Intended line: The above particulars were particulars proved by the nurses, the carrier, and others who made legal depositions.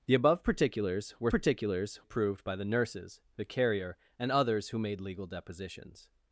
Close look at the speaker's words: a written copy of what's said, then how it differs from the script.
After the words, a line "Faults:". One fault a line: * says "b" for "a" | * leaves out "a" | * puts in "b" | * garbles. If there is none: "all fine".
The above particulars were particulars proved by the nurses, the carrier, and others who made legal depositions.
Faults:
all fine